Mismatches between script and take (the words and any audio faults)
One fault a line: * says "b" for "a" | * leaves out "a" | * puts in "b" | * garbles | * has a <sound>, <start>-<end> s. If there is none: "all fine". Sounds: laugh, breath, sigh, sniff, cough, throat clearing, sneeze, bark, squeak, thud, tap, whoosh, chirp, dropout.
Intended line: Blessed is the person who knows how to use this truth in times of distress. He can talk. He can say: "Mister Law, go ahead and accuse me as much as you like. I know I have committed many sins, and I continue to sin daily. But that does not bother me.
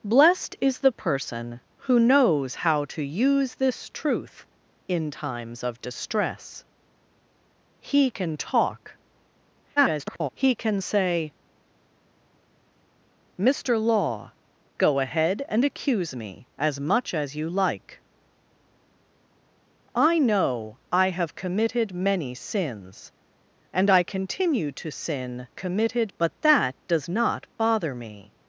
* garbles
* says "committed" for "daily"